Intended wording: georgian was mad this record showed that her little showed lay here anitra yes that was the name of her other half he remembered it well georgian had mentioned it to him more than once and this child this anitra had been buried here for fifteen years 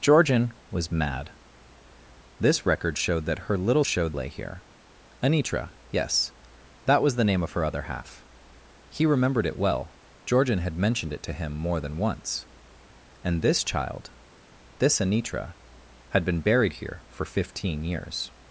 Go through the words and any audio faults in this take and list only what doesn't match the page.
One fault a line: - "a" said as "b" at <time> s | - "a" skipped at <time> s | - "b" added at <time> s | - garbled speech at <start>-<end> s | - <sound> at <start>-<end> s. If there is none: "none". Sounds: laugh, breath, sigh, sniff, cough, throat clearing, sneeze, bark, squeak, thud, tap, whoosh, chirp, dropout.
none